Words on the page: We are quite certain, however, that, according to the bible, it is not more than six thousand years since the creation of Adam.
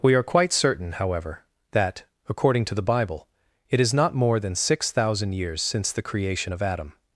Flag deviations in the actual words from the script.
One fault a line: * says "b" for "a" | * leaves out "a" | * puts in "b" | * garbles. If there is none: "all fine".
all fine